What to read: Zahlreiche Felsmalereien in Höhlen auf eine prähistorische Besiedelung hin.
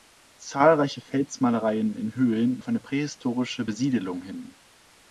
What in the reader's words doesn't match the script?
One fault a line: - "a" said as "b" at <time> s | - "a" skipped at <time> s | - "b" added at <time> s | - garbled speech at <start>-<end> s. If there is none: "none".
none